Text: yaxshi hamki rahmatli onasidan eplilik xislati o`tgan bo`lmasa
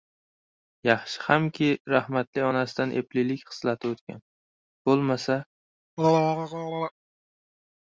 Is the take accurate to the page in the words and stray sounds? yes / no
no